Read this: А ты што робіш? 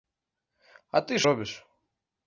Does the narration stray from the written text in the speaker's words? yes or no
yes